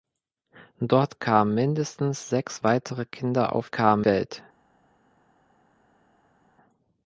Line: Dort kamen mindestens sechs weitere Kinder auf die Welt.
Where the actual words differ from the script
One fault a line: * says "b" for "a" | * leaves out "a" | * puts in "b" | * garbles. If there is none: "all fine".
* says "kamen" for "die"